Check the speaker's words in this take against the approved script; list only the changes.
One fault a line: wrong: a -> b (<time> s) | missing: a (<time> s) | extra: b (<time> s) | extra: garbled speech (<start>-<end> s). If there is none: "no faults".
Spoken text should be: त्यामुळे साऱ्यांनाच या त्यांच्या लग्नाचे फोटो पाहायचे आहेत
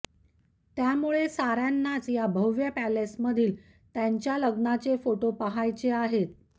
extra: भव्य पॅलेसमधील (2.3 s)